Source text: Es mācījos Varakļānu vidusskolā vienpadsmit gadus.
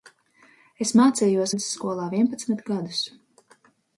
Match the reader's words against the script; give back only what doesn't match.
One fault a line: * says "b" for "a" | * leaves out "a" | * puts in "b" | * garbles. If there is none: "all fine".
* leaves out "Varakļānu"